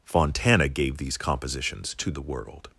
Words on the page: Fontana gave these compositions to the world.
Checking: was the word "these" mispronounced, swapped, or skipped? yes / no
no